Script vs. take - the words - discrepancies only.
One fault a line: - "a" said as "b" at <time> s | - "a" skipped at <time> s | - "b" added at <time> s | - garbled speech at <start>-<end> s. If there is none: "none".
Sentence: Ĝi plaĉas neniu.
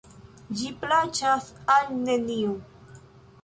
- "al" added at 1.8 s